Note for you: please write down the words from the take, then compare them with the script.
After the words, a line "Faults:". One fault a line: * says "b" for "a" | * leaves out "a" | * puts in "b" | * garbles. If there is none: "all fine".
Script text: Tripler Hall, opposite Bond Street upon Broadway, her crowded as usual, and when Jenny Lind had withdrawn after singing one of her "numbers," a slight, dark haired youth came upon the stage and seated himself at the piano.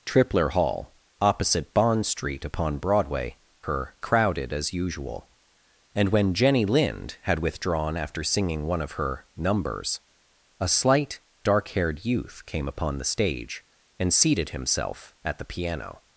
Tripler Hall, opposite Bond Street upon Broadway, her crowded as usual, and when Jenny Lind had withdrawn after singing one of her "numbers," a slight, dark haired youth came upon the stage and seated himself at the piano.
Faults:
all fine